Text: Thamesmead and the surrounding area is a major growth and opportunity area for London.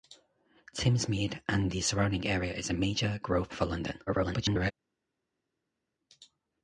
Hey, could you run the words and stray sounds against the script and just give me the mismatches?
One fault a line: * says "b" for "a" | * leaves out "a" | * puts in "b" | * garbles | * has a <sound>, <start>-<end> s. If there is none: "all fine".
* leaves out "and opportunity area"
* garbles